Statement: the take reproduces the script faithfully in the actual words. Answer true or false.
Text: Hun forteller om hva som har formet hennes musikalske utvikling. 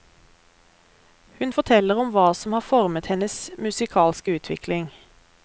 true